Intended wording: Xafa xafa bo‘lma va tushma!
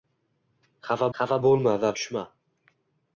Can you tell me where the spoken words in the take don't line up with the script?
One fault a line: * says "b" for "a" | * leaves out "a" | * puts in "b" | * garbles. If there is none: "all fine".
all fine